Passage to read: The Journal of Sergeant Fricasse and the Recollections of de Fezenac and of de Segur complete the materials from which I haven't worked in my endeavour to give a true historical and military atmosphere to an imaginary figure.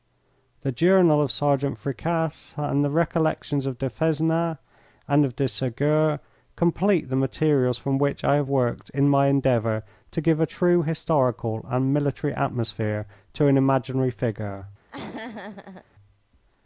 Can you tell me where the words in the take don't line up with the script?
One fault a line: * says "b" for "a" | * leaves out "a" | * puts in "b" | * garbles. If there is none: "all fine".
* says "have" for "haven't"